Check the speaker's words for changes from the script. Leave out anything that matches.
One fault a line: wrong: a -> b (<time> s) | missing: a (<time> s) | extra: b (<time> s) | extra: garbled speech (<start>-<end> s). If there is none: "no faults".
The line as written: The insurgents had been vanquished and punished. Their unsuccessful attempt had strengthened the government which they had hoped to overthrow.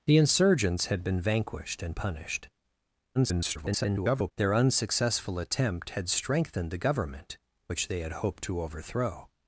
extra: garbled speech (3.1-4.3 s)